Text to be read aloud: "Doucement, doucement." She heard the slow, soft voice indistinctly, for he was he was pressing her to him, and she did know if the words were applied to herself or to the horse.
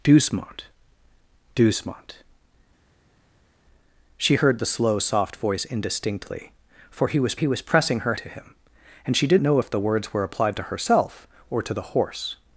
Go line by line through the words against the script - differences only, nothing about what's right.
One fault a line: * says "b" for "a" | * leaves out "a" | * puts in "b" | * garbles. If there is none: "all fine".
all fine